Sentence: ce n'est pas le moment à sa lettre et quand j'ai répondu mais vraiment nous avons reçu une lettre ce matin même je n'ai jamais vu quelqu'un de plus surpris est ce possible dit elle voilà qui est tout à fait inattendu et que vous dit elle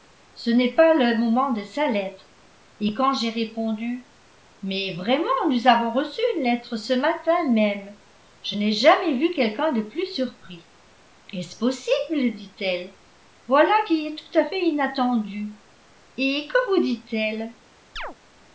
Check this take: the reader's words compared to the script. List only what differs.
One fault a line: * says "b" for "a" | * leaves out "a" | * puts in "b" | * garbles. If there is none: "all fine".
* says "de" for "à"